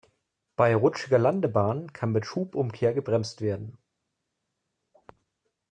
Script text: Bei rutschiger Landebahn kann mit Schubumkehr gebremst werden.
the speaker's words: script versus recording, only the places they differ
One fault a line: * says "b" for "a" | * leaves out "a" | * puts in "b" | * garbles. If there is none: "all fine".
all fine